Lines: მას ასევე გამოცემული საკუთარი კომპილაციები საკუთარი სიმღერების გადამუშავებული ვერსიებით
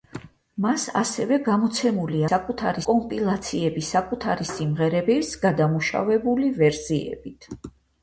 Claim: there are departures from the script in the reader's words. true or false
false